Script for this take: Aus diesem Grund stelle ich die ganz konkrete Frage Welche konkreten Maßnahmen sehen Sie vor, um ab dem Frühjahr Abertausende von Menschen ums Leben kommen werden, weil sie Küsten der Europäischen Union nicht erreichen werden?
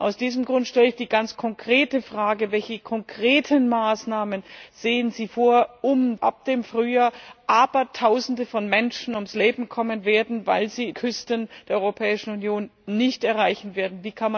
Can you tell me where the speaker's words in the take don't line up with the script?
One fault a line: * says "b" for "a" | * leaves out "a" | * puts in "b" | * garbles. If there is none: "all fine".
all fine